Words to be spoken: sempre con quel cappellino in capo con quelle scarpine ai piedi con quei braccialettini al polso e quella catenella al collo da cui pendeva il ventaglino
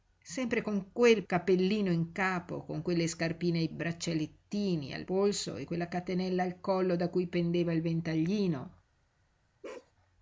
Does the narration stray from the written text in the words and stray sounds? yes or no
yes